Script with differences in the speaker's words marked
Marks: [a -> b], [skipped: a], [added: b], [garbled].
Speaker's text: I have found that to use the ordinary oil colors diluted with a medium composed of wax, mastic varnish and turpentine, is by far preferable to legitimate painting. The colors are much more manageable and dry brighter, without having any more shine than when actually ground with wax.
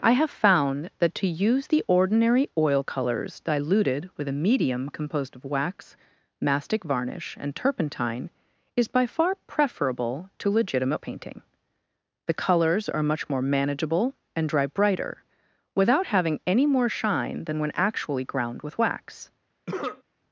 I have found that to use the ordinary oil colors diluted with a medium composed of wax, mastic varnish and turpentine, is by far preferable to legitimate painting. The colors are much more manageable and dry brighter, without having any more shine than when actually ground with wax.